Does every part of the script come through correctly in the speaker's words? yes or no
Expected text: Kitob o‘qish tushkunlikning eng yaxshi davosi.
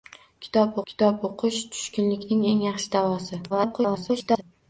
no